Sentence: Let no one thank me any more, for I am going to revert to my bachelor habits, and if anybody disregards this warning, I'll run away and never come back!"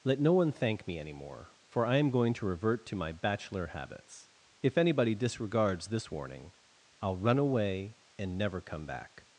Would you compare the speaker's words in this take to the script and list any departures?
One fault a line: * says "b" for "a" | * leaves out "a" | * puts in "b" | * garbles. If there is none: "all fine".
* leaves out "and"